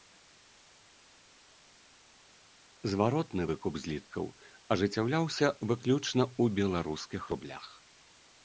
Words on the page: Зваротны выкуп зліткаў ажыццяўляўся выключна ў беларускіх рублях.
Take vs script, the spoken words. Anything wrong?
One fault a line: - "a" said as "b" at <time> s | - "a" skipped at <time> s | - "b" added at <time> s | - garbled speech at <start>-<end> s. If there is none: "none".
none